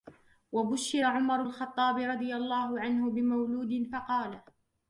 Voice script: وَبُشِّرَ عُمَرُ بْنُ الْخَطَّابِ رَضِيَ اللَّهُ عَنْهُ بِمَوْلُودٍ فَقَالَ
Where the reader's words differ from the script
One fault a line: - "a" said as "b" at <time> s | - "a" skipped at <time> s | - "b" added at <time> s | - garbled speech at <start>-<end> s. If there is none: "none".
- "بْنُ" skipped at 1.4 s